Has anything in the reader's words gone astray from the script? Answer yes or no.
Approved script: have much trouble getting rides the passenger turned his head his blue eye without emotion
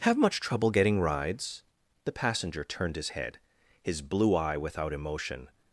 no